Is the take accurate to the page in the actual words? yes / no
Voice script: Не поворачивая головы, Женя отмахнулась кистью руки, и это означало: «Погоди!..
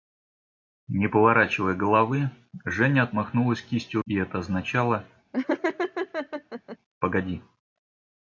no